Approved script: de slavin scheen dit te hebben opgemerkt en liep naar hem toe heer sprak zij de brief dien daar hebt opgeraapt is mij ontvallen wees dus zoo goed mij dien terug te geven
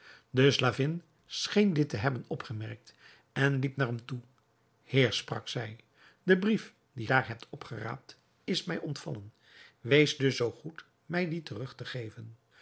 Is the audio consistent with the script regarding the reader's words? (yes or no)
yes